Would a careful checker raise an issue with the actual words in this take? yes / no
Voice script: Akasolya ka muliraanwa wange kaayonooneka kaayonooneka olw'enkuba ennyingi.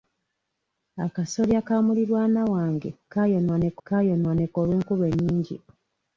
no